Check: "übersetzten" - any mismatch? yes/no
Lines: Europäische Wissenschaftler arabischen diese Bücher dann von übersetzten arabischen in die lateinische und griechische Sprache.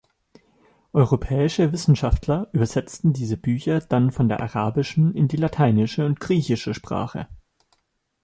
yes